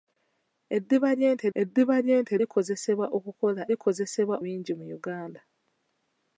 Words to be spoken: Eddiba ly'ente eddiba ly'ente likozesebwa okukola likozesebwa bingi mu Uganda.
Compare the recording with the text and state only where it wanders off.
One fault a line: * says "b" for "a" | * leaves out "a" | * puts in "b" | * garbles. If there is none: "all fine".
all fine